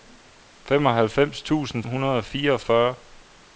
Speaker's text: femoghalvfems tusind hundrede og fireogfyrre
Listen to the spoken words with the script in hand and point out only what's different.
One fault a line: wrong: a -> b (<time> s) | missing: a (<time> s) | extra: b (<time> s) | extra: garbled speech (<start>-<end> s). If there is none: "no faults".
no faults